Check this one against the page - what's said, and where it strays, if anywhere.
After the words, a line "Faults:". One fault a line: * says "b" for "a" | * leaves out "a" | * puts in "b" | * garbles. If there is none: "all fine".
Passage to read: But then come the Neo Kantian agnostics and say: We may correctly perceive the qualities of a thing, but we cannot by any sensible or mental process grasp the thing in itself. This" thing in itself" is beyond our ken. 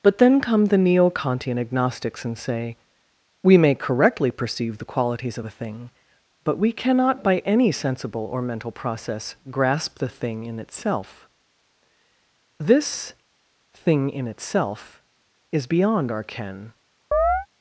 But then come the Neo Kantian agnostics and say: We may correctly perceive the qualities of a thing, but we cannot by any sensible or mental process grasp the thing in itself. This" thing in itself" is beyond our ken.
Faults:
all fine